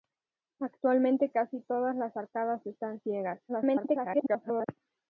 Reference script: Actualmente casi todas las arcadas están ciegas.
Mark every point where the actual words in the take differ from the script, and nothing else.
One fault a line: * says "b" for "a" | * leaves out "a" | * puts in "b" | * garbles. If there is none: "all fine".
* garbles